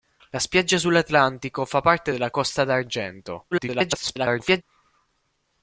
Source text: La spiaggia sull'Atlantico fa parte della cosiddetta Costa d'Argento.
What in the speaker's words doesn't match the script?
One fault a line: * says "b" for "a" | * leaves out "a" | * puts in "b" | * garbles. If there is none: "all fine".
* leaves out "cosiddetta"
* garbles